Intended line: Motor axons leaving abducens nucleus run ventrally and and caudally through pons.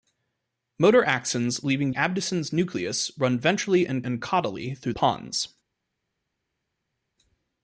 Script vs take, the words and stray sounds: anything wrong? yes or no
no